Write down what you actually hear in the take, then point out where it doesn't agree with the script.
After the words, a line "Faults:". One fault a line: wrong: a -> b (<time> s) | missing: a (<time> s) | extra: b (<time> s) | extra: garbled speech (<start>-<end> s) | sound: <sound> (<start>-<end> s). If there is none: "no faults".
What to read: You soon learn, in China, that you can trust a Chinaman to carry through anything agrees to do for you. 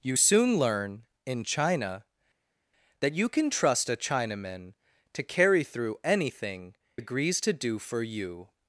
You soon learn, in China, that you can trust a Chinaman to carry through anything agrees to do for you.
Faults:
no faults